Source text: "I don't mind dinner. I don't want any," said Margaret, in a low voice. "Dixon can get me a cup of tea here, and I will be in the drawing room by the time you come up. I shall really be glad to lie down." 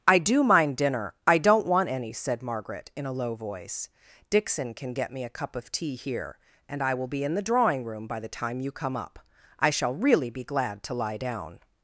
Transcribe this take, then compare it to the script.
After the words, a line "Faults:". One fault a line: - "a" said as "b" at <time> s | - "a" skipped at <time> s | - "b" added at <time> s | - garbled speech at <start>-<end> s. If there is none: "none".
"I do mind dinner. I don't want any," said Margaret, in a low voice. "Dixon can get me a cup of tea here, and I will be in the drawing room by the time you come up. I shall really be glad to lie down."
Faults:
- "don't" said as "do" at 0.2 s